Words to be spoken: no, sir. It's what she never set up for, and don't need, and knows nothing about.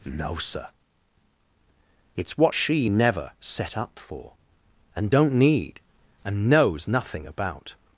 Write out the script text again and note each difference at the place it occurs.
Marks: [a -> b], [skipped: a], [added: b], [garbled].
no, sir. It's what she never set up for, and don't need, and knows nothing about.